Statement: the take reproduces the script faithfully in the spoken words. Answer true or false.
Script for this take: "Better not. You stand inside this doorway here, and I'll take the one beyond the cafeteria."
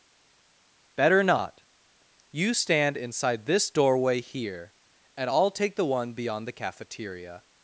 true